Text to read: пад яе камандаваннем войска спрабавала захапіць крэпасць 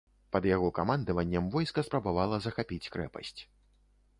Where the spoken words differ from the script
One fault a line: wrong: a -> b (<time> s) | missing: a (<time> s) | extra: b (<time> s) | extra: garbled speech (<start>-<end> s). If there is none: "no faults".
wrong: яе -> яго (0.5 s)